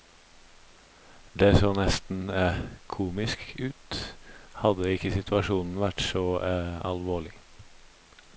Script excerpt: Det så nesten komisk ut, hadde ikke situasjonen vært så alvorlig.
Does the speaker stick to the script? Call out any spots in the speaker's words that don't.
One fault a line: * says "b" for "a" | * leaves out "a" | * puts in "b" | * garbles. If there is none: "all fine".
all fine